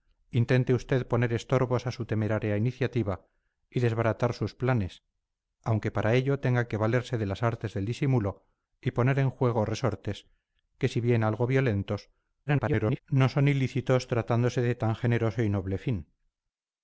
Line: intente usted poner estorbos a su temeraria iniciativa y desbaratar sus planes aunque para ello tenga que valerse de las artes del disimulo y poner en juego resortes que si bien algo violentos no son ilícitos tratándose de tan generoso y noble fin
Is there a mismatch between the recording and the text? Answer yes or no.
yes